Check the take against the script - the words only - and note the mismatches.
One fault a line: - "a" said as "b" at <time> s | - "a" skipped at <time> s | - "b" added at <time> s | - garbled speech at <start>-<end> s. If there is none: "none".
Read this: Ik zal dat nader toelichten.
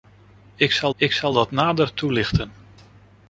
- "ik zal" added at 1.0 s